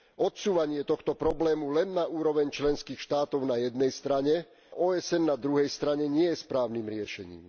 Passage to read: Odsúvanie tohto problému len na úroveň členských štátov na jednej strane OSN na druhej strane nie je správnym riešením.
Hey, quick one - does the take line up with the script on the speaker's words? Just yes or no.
yes